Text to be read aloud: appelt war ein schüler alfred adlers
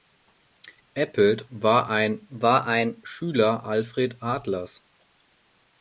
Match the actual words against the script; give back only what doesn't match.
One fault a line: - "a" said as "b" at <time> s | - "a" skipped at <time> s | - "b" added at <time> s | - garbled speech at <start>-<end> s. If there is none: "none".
- "war ein" added at 2.3 s